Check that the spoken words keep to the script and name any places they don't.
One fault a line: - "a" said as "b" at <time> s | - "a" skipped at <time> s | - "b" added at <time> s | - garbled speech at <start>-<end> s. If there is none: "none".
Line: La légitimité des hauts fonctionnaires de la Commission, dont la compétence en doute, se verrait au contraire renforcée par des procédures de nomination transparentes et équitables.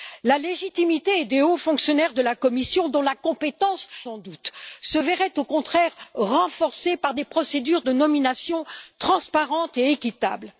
none